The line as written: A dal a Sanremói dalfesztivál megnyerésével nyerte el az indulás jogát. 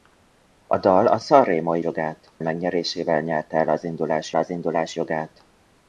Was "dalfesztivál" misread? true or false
true